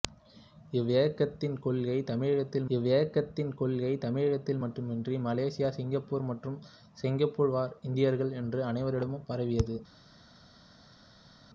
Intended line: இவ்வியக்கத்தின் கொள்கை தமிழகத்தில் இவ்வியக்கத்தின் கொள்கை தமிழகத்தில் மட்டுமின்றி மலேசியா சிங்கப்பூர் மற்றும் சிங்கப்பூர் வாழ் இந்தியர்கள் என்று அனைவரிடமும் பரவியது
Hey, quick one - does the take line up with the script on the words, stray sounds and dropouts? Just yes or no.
yes